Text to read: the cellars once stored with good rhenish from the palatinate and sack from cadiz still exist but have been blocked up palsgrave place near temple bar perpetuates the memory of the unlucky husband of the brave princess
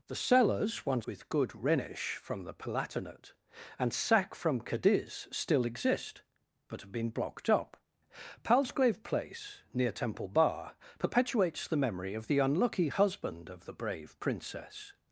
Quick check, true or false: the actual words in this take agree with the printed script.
false